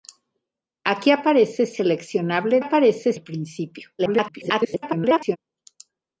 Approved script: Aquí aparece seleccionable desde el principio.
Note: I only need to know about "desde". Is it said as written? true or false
false